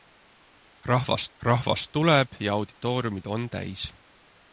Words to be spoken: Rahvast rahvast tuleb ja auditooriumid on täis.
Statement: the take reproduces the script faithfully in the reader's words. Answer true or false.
true